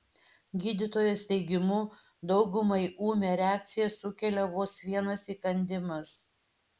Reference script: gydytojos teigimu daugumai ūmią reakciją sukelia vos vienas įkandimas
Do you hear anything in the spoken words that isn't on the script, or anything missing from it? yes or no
no